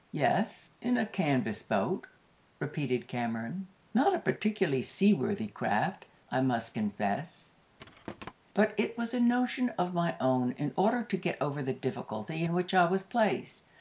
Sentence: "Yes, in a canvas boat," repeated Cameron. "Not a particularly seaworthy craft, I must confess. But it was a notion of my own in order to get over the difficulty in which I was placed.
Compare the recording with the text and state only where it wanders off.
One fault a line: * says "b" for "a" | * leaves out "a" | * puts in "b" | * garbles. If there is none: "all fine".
all fine